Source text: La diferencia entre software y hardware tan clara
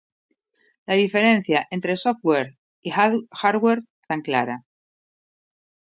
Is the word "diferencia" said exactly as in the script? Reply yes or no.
yes